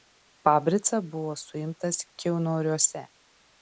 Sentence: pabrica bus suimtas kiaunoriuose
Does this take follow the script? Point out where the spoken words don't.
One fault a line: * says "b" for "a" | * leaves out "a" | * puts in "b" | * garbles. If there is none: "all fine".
* says "buvo" for "bus"